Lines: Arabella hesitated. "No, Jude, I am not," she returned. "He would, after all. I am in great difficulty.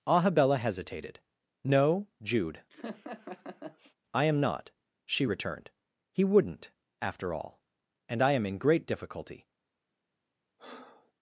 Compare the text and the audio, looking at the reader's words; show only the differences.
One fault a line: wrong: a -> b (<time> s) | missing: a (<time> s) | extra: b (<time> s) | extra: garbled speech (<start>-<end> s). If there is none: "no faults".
wrong: would -> wouldn't (6.2 s)
extra: And (8.1 s)